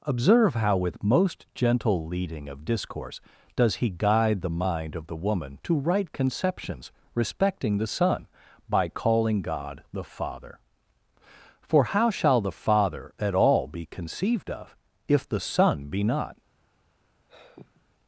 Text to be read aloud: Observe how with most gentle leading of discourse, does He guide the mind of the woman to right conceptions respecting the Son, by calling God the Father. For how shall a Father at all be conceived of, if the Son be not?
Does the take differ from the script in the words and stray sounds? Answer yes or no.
yes